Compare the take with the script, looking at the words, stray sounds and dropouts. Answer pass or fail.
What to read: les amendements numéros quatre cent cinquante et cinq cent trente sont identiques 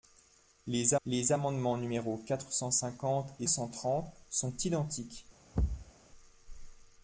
fail